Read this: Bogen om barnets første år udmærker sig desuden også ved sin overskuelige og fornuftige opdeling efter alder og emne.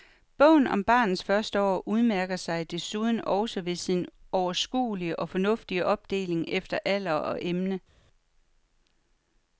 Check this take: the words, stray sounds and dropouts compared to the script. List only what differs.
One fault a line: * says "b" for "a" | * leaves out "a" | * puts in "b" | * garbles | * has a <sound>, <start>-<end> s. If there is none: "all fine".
all fine